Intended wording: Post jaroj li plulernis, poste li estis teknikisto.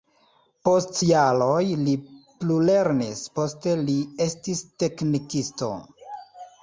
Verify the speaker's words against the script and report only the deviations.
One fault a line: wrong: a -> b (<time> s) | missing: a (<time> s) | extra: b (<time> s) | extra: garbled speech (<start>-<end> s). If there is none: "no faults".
no faults